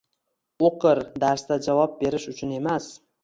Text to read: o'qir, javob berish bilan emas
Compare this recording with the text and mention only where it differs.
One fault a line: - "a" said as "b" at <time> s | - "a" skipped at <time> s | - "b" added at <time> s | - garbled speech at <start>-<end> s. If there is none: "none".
- "darsda" added at 1.2 s
- "bilan" said as "uchun" at 2.4 s